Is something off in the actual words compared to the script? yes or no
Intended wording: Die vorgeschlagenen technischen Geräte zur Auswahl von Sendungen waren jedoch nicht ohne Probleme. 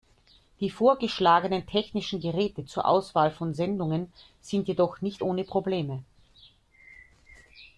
yes